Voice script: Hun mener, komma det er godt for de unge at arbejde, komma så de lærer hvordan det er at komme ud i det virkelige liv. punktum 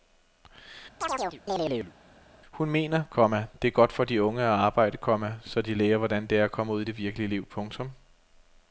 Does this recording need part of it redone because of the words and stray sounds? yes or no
yes